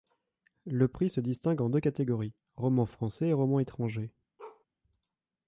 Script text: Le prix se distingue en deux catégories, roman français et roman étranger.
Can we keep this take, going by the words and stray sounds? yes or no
no